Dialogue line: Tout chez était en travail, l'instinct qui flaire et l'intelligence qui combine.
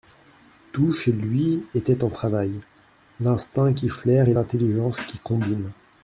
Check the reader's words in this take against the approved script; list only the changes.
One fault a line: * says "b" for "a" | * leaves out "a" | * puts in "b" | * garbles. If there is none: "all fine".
* puts in "lui"